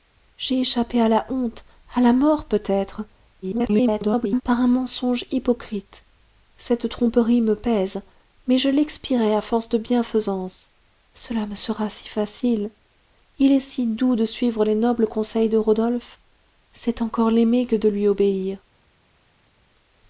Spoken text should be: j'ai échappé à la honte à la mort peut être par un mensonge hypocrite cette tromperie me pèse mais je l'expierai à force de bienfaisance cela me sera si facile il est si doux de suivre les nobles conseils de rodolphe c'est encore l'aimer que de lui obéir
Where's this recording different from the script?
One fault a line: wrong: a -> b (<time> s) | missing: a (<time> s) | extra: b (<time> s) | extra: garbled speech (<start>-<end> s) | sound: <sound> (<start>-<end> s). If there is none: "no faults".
extra: garbled speech (3.4-4.4 s)